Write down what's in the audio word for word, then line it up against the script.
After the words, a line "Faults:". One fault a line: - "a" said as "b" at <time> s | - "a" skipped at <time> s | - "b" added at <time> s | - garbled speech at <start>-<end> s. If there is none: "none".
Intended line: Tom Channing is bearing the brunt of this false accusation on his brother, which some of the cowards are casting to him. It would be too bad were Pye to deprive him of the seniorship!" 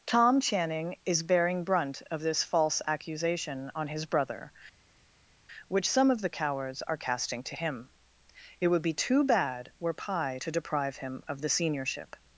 Tom Channing is bearing brunt of this false accusation on his brother, which some of the cowards are casting to him. It would be too bad were Pye to deprive him of the seniorship!"
Faults:
- "the" skipped at 1.6 s